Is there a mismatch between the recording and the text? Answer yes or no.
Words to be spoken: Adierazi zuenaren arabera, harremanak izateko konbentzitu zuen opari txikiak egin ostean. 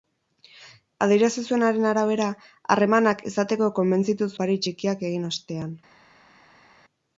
yes